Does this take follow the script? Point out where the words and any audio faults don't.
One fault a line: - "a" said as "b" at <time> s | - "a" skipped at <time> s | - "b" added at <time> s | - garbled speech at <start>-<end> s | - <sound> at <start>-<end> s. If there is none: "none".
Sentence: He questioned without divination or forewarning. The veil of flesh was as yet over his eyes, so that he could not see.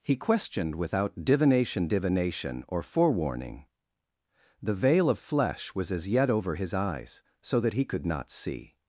- "divination" added at 1.9 s